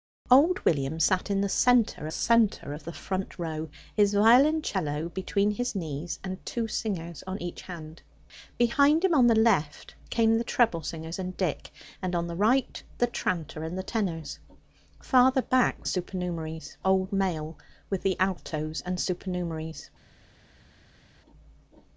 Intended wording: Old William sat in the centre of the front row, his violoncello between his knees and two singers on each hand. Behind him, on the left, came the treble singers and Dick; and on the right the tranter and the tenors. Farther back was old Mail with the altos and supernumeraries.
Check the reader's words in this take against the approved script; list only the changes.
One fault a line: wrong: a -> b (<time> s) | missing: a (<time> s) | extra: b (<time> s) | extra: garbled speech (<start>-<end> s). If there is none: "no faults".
extra: centre (2.1 s)
wrong: was -> supernumeraries (15.9 s)